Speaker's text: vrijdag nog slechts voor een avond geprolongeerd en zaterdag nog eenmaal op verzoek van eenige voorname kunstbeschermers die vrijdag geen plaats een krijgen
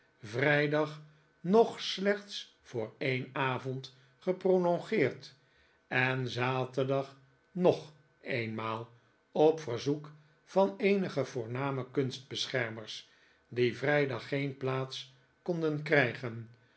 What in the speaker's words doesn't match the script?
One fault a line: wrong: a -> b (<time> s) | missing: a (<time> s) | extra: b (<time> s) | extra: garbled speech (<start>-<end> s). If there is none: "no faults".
wrong: een -> konden (15.4 s)